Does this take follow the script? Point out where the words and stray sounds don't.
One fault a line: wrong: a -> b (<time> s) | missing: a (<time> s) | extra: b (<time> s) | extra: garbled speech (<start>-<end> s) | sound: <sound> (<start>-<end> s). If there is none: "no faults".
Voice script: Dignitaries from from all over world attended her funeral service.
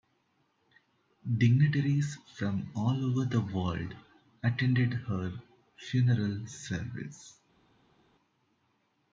missing: from (2.7 s)
extra: the (3.3 s)